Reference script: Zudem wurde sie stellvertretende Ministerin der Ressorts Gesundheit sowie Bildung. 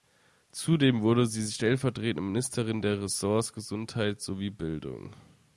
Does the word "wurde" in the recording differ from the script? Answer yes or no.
no